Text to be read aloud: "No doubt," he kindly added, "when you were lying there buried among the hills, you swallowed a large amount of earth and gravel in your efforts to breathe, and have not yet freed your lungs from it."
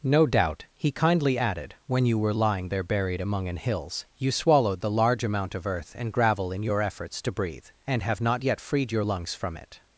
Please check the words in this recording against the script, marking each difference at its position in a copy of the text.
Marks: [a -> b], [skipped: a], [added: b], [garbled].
"No doubt," he kindly added, "when you were lying there buried among [the -> an] hills, you swallowed [a -> the] large amount of earth and gravel in your efforts to breathe, and have not yet freed your lungs from it."